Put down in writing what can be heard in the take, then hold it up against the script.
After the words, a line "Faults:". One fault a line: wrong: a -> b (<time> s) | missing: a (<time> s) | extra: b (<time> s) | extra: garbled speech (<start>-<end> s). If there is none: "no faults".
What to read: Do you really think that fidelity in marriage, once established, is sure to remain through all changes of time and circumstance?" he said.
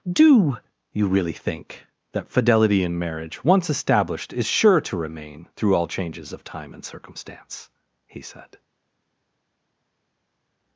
Do you really think that fidelity in marriage, once established, is sure to remain through all changes of time and circumstance?" he said.
Faults:
no faults